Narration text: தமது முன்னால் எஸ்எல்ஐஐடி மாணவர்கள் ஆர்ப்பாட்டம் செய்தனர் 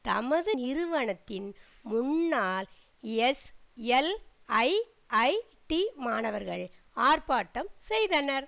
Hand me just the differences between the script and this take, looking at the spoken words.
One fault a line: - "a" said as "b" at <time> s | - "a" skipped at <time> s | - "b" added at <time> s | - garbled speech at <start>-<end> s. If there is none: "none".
- "நிறுவனத்தின்" added at 0.5 s